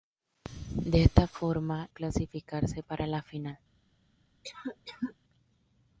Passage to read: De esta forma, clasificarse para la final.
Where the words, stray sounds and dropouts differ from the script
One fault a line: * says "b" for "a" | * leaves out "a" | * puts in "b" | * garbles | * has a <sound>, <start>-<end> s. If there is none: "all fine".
* has a cough, 4.4-5.2 s